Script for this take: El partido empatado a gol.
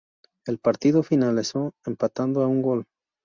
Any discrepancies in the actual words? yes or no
yes